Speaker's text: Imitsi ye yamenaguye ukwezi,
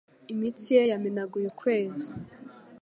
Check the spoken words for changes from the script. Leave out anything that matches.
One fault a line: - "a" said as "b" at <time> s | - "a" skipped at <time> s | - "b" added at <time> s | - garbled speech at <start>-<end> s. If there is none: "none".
none